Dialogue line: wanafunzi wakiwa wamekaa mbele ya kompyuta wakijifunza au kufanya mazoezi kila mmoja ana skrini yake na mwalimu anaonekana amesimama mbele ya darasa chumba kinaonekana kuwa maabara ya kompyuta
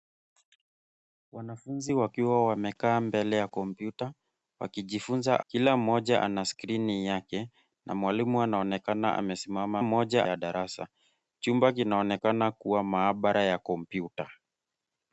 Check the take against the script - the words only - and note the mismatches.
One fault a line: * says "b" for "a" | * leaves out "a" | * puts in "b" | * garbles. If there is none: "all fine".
* leaves out "au kufanya mazoezi"
* says "mmoja" for "mbele"